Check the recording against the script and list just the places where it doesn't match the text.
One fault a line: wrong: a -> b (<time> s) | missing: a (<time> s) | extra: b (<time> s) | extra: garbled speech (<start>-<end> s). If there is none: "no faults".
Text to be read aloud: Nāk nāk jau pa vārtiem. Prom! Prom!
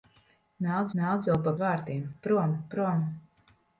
no faults